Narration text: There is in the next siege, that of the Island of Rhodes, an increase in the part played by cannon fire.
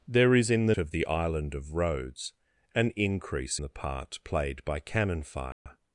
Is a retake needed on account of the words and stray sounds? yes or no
yes